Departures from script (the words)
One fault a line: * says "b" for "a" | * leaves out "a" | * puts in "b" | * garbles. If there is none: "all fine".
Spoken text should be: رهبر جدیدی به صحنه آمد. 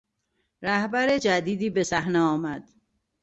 all fine